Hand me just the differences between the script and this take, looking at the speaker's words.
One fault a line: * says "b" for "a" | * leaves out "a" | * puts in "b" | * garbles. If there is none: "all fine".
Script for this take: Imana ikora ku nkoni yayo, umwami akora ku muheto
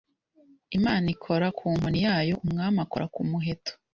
all fine